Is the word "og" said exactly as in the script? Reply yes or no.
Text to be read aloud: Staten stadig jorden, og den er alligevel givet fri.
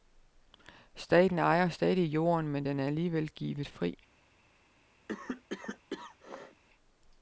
no